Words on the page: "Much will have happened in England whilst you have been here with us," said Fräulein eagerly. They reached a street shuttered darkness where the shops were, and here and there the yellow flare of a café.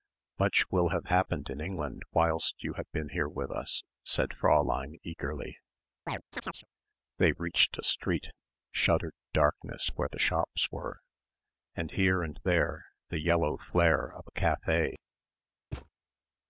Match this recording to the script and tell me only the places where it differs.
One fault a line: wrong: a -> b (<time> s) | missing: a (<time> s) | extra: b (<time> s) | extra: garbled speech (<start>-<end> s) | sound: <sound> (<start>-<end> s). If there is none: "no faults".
sound: chirp (6.1-6.7 s)
sound: thud (15.7-15.9 s)